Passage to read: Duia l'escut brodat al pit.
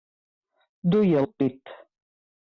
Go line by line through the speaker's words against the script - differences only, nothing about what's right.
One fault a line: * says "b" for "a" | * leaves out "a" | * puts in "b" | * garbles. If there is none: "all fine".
* leaves out "l'escut brodat"